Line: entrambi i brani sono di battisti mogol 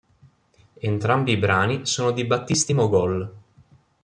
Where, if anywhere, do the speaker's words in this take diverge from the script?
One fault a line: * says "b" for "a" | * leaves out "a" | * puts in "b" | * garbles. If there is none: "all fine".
all fine